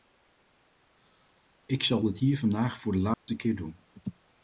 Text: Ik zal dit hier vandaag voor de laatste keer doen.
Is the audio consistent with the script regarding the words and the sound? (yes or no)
no